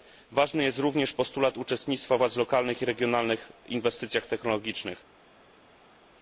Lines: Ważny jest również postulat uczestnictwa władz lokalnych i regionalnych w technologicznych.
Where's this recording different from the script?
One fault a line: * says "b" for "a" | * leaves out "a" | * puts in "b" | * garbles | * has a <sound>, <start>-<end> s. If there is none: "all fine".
* puts in "inwestycjach"